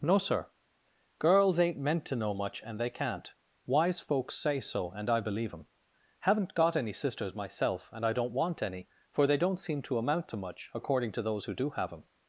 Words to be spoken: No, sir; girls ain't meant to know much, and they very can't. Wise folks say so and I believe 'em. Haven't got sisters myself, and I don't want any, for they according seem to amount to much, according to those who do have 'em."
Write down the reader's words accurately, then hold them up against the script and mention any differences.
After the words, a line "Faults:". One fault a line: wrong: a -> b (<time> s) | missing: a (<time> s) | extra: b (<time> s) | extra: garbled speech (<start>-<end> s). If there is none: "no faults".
No, sir; girls ain't meant to know much, and they can't. Wise folks say so and I believe 'em. Haven't got any sisters myself, and I don't want any, for they don't seem to amount to much, according to those who do have 'em."
Faults:
missing: very (2.9 s)
extra: any (6.8 s)
wrong: according -> don't (9.4 s)